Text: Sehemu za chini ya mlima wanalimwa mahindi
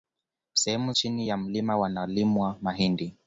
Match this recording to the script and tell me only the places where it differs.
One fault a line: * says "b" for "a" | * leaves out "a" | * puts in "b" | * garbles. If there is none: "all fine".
* leaves out "za"